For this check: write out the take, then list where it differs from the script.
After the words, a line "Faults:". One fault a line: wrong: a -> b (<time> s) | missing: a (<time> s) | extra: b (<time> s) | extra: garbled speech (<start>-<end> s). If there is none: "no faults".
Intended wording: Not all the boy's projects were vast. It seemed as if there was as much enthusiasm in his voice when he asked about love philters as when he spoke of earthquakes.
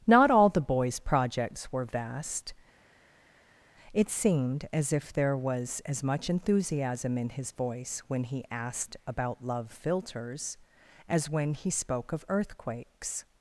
Not all the boy's projects were vast. It seemed as if there was as much enthusiasm in his voice when he asked about love philters as when he spoke of earthquakes.
Faults:
no faults